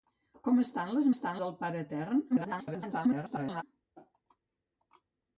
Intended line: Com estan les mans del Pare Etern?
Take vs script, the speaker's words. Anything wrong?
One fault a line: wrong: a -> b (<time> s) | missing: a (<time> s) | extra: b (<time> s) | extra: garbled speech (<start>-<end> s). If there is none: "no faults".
wrong: mans -> estan (1.1 s)
extra: garbled speech (2.3-3.6 s)